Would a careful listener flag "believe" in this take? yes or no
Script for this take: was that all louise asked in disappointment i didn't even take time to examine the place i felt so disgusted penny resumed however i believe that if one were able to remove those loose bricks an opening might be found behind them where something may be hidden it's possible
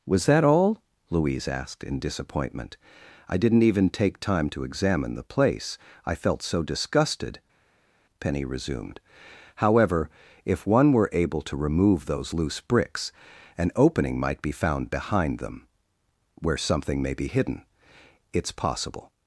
yes